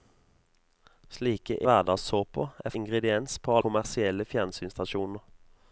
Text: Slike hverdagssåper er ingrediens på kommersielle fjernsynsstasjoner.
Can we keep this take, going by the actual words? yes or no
yes